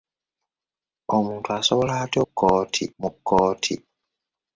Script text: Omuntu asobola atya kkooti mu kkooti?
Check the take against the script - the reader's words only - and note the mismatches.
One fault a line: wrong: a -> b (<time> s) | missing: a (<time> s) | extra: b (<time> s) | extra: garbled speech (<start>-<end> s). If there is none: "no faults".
no faults